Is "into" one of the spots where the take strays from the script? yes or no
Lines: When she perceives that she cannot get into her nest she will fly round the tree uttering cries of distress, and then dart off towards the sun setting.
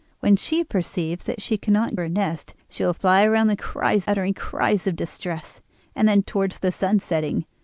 yes